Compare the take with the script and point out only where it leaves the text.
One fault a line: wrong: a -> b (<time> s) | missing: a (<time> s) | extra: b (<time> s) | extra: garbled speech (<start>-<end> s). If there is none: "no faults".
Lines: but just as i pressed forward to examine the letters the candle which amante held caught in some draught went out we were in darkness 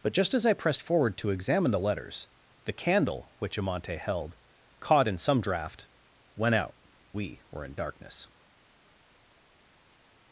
no faults